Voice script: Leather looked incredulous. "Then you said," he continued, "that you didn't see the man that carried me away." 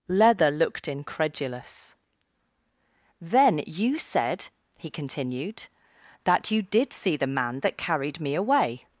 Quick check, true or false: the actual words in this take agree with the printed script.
false